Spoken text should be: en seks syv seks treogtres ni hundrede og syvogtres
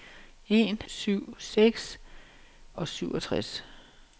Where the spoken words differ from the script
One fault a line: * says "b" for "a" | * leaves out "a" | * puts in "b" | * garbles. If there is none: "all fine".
* leaves out "seks"
* leaves out "treogtres ni hundrede"